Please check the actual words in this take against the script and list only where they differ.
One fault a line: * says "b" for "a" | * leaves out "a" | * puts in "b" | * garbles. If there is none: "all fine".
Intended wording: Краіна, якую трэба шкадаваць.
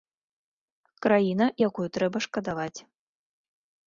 all fine